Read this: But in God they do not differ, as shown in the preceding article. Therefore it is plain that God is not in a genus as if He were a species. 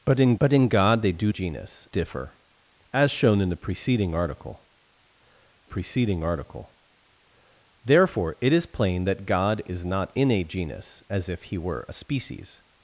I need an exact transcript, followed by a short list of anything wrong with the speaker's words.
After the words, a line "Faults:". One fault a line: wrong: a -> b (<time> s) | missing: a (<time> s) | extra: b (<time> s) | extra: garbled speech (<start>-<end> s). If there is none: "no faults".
But in but in God they do genus differ, as shown in the preceding article preceding article. Therefore it is plain that God is not in a genus as if He were a species.
Faults:
extra: but in (0.4 s)
wrong: not -> genus (1.3 s)
extra: preceding article (5.6 s)